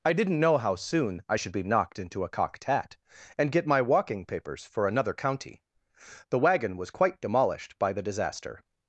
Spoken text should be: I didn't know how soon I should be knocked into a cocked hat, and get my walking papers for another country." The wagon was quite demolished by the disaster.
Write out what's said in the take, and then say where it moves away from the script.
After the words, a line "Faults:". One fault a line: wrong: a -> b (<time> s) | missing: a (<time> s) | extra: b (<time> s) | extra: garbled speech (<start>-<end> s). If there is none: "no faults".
I didn't know how soon I should be knocked into a cocked hat, and get my walking papers for another county." The wagon was quite demolished by the disaster.
Faults:
wrong: country -> county (5.1 s)